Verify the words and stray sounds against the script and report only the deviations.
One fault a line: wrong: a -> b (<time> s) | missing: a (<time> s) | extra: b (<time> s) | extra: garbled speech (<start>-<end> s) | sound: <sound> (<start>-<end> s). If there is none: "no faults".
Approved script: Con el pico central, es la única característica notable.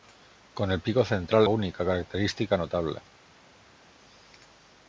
missing: es la (1.5 s)